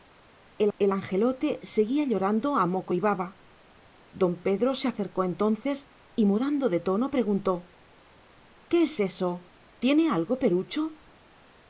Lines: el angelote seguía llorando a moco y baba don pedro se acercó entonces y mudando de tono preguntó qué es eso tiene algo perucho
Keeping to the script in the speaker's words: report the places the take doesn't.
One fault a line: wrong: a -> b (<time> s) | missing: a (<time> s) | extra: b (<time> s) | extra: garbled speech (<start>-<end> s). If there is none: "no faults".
extra: el (0.8 s)